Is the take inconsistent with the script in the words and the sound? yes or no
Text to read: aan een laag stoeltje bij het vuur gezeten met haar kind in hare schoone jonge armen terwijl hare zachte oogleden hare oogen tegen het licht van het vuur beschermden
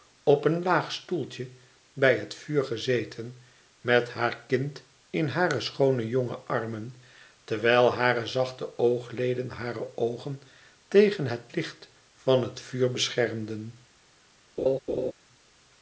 yes